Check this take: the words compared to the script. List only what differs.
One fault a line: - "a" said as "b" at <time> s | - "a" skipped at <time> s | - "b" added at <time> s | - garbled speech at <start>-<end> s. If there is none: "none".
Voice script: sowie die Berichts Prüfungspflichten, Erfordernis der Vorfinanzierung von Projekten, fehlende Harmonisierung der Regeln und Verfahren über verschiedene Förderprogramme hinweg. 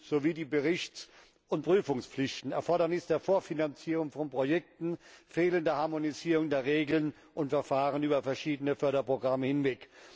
- "und" added at 1.5 s